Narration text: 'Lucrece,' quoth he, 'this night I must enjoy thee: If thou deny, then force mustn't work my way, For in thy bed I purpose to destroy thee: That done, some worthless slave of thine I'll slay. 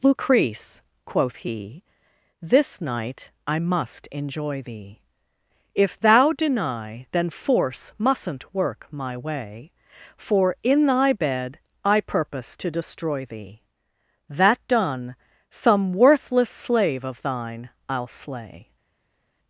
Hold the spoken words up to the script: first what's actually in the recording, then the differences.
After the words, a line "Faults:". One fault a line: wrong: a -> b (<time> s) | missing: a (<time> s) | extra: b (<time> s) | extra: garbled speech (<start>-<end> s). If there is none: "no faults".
'Lucrece,' quoth he, 'this night I must enjoy thee: If thou deny, then force mustn't work my way, For in thy bed I purpose to destroy thee: That done, some worthless slave of thine I'll slay.
Faults:
no faults